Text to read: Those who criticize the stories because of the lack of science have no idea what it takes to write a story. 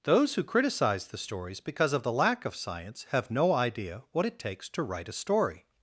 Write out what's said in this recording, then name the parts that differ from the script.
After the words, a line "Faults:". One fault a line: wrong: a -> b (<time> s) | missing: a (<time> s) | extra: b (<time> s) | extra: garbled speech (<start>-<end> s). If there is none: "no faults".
Those who criticize the stories because of the lack of science have no idea what it takes to write a story.
Faults:
no faults